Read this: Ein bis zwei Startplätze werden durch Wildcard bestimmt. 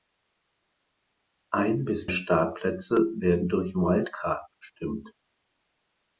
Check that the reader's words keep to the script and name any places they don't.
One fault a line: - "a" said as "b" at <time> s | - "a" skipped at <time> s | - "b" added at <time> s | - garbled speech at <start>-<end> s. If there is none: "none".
- "zwei" skipped at 2.1 s